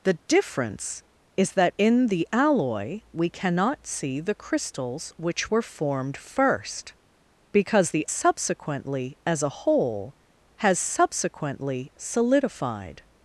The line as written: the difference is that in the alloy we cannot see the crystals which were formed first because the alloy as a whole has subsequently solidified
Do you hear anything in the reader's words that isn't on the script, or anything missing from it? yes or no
yes